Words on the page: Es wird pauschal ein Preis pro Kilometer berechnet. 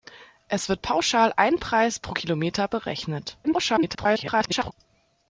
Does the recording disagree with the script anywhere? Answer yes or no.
yes